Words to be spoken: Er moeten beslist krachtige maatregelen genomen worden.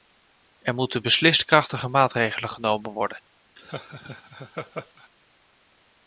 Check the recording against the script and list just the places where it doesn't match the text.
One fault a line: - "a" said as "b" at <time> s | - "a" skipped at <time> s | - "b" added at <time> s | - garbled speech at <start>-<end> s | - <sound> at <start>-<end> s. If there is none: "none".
- laugh at 3.6-5.1 s